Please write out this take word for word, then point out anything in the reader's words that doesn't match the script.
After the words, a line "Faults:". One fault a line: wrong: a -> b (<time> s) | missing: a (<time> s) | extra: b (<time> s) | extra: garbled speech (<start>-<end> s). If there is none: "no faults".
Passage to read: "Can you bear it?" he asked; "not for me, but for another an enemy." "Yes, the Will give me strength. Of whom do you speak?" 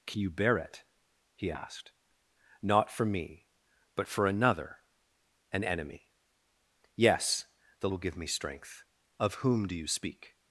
"Can you bear it?" he asked; "not for me, but for another an enemy." "Yes, the Will give me strength. Of whom do you speak?"
Faults:
no faults